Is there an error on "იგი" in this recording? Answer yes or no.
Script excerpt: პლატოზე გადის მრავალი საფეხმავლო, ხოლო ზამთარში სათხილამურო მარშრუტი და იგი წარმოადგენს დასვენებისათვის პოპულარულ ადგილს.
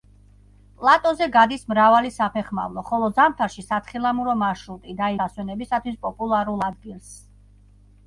yes